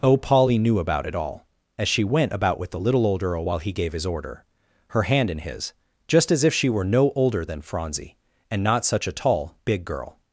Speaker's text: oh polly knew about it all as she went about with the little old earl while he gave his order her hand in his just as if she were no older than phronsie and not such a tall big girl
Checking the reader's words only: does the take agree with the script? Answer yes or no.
yes